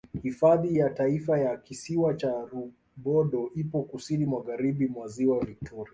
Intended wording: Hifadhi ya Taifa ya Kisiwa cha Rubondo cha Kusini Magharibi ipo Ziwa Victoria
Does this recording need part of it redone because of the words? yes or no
yes